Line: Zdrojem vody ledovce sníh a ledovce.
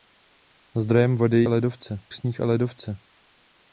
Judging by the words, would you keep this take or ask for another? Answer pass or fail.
pass